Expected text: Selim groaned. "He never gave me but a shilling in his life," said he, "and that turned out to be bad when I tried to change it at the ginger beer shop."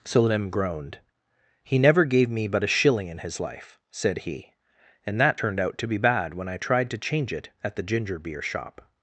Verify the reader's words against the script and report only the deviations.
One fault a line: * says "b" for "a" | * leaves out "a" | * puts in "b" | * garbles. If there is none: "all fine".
all fine